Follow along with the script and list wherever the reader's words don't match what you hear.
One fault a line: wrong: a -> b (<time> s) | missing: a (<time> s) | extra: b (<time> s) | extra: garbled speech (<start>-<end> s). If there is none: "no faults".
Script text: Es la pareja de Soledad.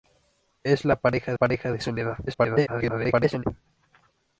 extra: pareja (1.3 s)
extra: garbled speech (2.3-3.4 s)